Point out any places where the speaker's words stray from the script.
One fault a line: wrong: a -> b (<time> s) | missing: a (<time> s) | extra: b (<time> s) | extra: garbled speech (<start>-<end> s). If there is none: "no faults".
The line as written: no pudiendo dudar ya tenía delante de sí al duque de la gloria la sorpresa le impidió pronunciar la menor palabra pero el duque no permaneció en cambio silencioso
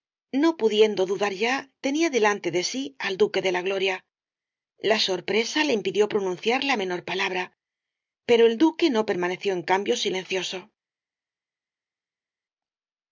no faults